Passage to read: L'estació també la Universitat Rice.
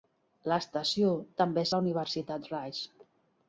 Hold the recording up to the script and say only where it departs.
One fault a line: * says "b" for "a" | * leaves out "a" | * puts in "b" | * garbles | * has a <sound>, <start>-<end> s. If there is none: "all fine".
all fine